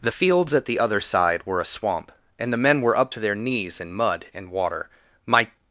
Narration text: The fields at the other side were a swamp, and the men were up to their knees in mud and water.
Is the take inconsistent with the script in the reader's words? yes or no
yes